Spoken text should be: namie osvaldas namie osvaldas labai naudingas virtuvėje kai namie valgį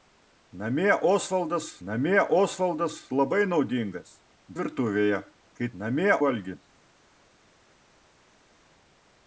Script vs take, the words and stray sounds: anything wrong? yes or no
no